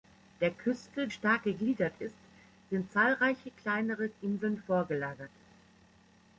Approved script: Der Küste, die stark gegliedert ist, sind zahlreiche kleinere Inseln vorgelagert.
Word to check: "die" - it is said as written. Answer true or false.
false